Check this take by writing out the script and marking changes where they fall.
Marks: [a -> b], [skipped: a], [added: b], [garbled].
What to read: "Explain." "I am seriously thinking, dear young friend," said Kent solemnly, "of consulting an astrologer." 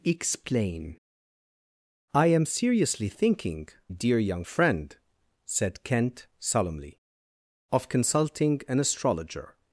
"Explain." "I am seriously thinking, dear young friend," said Kent solemnly, "of consulting an astrologer."